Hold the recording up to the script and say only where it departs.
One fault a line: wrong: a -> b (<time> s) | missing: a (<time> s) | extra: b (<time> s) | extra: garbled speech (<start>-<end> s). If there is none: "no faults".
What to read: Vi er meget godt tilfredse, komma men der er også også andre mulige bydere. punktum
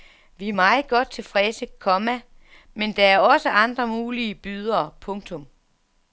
missing: også (3.5 s)